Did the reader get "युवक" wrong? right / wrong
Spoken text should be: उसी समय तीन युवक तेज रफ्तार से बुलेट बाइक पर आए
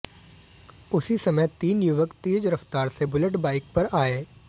right